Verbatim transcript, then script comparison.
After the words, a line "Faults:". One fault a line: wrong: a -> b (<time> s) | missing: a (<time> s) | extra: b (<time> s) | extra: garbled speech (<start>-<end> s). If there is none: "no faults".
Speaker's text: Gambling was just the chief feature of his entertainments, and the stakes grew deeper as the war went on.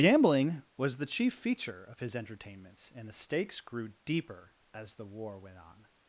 Gambling was the chief feature of his entertainments, and the stakes grew deeper as the war went on.
Faults:
missing: just (1.0 s)